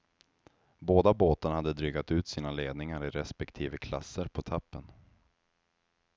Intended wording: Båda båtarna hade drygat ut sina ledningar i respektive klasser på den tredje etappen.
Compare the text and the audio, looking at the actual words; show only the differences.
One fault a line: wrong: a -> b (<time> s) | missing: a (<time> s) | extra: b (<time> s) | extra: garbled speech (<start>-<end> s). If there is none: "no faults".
missing: den tredje (4.4 s)